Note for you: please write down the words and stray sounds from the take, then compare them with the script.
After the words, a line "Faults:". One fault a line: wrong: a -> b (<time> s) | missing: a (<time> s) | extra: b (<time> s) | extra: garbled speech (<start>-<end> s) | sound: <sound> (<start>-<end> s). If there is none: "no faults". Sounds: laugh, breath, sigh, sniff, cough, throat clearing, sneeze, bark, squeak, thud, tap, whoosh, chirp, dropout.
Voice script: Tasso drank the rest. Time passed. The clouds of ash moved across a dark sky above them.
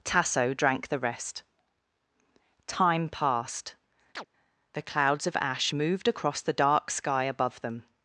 Tasso drank the rest. Time passed. The clouds of ash moved across the dark sky above them.
Faults:
sound: chirp (4.2-4.3 s)
wrong: a -> the (6.4 s)